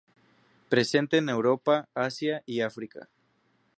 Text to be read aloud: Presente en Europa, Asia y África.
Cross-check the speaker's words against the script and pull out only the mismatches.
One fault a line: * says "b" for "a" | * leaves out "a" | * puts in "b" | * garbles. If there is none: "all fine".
all fine